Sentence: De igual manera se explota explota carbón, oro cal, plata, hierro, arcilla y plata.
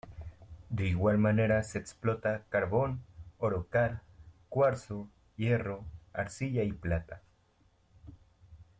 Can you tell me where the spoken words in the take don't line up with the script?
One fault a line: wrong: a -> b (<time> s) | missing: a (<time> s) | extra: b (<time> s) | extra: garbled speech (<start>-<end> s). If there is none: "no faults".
missing: explota (2.5 s)
wrong: plata -> cuarzo (4.5 s)